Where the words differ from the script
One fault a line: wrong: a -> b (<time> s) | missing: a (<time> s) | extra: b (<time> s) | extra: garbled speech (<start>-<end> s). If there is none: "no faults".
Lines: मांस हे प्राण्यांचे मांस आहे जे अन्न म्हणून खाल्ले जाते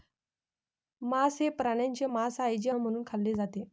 missing: अन्न (2.7 s)